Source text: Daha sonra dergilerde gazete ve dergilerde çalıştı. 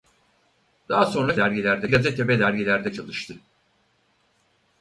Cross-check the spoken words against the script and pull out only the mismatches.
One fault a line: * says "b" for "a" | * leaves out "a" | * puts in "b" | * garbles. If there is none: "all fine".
all fine